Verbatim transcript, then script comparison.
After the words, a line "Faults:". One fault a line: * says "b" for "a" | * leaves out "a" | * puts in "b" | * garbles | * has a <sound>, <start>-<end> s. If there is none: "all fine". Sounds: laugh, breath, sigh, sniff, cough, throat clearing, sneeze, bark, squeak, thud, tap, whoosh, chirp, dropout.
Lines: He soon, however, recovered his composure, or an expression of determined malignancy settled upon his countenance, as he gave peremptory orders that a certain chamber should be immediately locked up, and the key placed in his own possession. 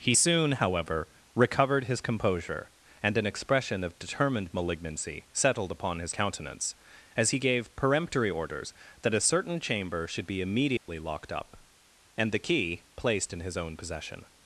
He soon, however, recovered his composure, and an expression of determined malignancy settled upon his countenance, as he gave peremptory orders that a certain chamber should be immediately locked up, and the key placed in his own possession.
Faults:
* says "and" for "or"
* has a dropout, 10.8-10.9 s